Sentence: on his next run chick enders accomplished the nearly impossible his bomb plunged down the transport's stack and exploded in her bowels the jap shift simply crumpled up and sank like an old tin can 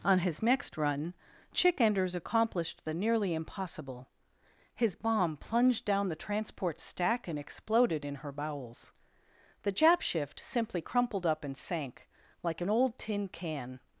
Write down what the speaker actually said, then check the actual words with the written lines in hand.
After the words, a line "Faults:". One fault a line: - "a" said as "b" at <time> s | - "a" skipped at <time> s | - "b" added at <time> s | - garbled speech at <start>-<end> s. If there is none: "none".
on his next run chick enders accomplished the nearly impossible his bomb plunged down the transport's stack and exploded in her bowels the jap shift simply crumpled up and sank like an old tin can
Faults:
none